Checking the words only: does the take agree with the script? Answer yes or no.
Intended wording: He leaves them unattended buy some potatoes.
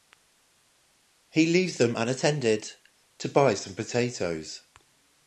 no